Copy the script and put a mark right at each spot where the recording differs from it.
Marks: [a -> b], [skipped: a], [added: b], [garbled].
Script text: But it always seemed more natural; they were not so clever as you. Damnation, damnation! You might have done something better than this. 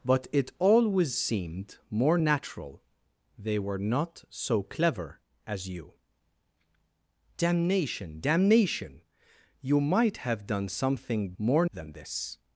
But it always seemed more natural; they were not so clever as you. Damnation, damnation! You might have done something [better -> more] than this.